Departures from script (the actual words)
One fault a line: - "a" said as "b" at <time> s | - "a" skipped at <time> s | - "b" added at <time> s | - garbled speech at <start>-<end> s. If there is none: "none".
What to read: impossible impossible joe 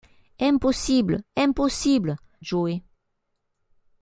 none